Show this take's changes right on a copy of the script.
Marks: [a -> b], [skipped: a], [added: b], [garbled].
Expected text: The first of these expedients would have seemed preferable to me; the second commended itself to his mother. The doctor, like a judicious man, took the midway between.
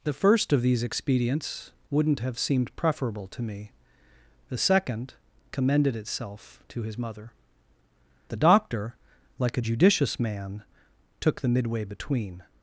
The first of these expedients [would -> wouldn't] have seemed preferable to me; the second commended itself to his mother. The doctor, like a judicious man, took the midway between.